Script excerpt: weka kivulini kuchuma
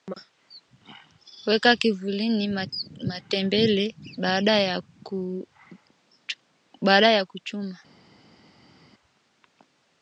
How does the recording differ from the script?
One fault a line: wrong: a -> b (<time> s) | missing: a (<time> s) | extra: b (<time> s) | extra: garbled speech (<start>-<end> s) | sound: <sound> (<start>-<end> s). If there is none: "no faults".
extra: matembele baada ya (3.1 s)